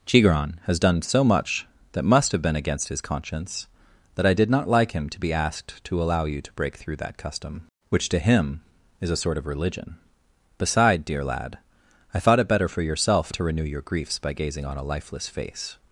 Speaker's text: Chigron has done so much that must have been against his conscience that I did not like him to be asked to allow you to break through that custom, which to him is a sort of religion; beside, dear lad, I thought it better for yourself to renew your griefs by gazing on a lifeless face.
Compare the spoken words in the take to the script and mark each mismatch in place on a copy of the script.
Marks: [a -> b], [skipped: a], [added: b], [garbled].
Chigron has done so much that must have been against his conscience that I did not like him to be asked to allow you to break through that custom, which to him is a sort of religion; beside, dear lad, I thought it better for yourself to renew your griefs by gazing on a lifeless face.